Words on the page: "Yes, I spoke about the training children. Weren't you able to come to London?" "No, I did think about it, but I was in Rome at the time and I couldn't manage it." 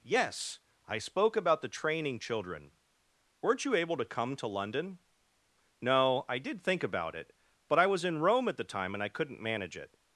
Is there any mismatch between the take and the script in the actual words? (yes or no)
no